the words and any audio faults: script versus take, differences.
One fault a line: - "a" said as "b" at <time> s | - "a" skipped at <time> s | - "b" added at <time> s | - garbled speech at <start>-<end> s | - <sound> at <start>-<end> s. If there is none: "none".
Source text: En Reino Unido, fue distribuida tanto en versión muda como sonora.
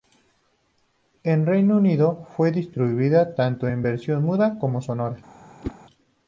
- whoosh at 5.6-5.8 s